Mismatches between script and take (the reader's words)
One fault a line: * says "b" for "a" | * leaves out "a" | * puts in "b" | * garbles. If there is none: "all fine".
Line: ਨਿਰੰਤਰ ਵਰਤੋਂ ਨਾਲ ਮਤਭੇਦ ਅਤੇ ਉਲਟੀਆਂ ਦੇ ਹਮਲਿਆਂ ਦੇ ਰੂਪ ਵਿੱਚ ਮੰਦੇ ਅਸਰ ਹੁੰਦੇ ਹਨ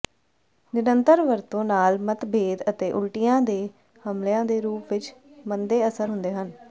all fine